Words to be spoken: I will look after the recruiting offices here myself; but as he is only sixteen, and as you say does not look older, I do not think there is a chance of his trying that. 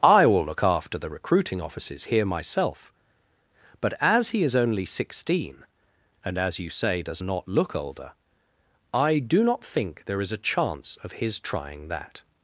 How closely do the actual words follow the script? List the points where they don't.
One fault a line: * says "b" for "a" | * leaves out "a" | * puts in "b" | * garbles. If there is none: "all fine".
all fine